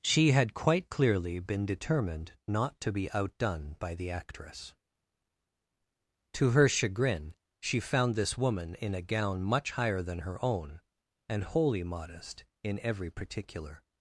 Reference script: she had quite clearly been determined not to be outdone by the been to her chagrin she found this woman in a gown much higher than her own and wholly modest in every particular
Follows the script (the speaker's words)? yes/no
no